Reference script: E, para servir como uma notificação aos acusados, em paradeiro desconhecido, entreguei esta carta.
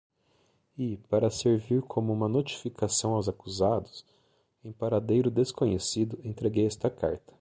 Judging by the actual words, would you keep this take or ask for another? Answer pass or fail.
pass